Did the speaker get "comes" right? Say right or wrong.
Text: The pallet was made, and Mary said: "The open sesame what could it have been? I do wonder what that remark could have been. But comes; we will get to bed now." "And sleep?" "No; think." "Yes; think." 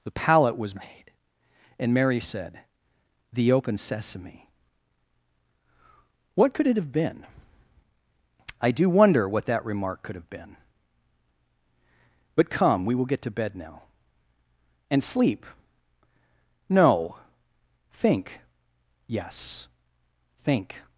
wrong